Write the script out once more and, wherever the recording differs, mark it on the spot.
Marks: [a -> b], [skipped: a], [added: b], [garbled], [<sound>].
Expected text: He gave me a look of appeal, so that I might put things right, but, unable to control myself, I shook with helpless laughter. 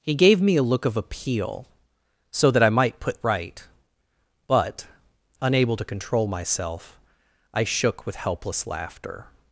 He gave me a look of appeal, so that I might put [skipped: things] right, but, unable to control myself, I shook with helpless laughter.